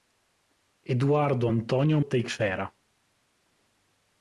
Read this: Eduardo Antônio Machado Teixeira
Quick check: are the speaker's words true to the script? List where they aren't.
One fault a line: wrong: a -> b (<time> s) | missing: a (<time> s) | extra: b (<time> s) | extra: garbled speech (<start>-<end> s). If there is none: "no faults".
missing: Machado (2.0 s)